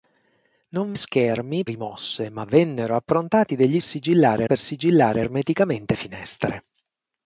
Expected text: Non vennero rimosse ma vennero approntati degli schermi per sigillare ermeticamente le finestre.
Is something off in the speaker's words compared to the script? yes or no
yes